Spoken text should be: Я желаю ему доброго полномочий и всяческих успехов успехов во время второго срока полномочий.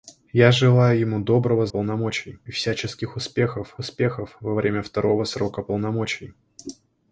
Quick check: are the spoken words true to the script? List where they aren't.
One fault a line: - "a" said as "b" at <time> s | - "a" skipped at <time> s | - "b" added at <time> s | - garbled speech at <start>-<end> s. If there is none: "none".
none